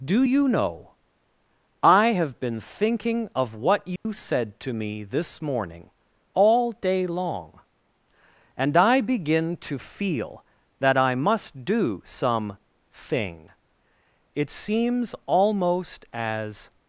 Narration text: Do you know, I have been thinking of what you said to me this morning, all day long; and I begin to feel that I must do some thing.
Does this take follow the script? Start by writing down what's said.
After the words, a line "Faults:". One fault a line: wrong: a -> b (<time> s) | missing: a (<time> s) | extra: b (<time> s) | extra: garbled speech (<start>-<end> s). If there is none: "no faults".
Do you know, I have been thinking of what you said to me this morning, all day long; and I begin to feel that I must do some thing. It seems almost as
Faults:
extra: It seems almost as (14.4 s)